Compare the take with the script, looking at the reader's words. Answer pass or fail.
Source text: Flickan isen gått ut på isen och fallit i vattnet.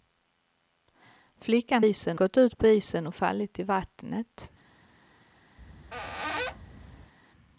pass